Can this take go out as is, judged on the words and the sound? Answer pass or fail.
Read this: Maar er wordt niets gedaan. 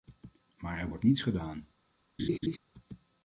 fail